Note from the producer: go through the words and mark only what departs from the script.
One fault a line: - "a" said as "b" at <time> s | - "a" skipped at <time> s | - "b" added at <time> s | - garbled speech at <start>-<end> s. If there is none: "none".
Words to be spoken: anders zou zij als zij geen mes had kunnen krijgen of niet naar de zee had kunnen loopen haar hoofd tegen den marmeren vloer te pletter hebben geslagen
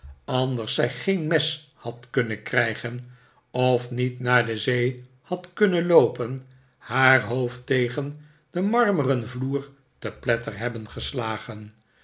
- "zou zij als" skipped at 0.8 s